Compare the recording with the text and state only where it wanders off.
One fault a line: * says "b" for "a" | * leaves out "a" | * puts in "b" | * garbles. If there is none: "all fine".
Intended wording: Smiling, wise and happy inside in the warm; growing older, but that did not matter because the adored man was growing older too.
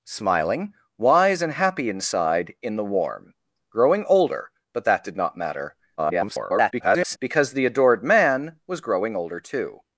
* garbles